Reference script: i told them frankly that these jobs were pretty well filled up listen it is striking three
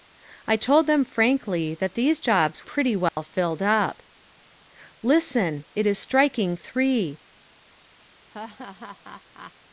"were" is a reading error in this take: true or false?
true